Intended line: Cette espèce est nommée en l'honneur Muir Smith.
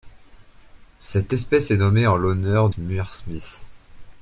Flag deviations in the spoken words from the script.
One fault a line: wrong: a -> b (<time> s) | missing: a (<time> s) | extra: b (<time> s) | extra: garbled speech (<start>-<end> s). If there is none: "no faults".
no faults